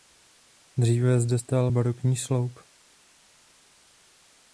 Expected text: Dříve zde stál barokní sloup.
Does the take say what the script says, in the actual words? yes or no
yes